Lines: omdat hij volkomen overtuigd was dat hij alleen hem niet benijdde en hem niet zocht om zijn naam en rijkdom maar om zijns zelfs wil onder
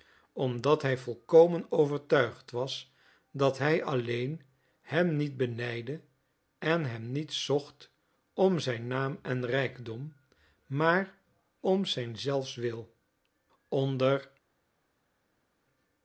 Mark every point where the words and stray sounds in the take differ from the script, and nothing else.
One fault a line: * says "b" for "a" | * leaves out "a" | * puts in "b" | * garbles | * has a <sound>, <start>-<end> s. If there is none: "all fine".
all fine